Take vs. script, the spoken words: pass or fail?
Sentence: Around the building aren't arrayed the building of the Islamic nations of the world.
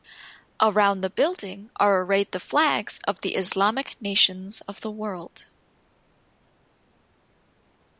fail